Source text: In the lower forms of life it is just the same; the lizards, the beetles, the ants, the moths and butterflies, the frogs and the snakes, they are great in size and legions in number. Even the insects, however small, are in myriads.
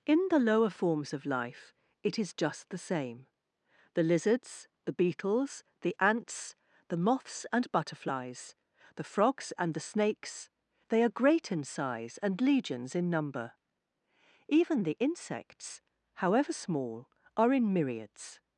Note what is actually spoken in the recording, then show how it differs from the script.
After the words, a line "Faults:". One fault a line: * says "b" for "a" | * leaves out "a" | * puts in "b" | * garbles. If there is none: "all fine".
In the lower forms of life it is just the same; the lizards, the beetles, the ants, the moths and butterflies, the frogs and the snakes, they are great in size and legions in number. Even the insects, however small, are in myriads.
Faults:
all fine